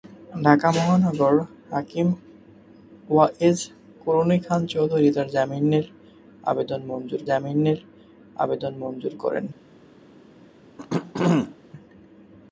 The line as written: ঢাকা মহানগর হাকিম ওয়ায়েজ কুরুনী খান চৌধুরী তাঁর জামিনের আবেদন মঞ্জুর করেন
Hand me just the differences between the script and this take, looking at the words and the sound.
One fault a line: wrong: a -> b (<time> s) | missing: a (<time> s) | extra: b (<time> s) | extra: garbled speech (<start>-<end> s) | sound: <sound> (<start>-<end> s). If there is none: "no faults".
extra: জামিনের আবেদন মঞ্জুর (7.3 s)
sound: throat clearing (10.8-11.5 s)